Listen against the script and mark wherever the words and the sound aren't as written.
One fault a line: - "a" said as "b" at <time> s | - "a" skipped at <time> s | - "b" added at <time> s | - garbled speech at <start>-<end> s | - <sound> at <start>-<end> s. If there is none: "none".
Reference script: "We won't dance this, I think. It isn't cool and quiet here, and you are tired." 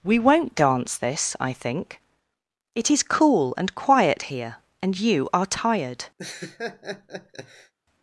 - "isn't" said as "is" at 2.9 s
- laugh at 6.2-7.7 s